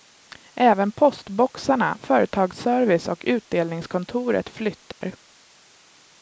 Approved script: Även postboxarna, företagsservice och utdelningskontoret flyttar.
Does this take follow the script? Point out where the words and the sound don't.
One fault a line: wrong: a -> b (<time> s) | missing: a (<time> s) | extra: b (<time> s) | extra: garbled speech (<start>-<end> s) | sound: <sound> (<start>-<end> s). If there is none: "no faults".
sound: dropout (4.9-5.0 s)